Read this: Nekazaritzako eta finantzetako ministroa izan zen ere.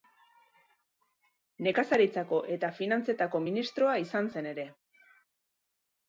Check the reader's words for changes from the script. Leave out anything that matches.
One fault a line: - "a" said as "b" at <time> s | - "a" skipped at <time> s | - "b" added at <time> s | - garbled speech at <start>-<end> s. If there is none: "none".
none